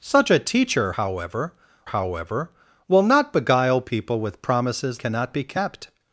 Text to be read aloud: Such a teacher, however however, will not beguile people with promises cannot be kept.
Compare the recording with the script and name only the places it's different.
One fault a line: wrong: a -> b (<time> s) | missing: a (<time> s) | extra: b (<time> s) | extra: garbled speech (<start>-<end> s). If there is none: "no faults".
no faults